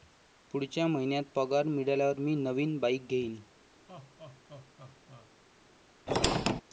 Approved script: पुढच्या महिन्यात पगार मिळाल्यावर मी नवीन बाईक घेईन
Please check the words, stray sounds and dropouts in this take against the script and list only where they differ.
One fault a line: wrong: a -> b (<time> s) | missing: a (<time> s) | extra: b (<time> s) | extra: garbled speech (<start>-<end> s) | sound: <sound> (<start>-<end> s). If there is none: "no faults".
sound: laugh (3.9-5.3 s)
sound: squeak (6.1-6.6 s)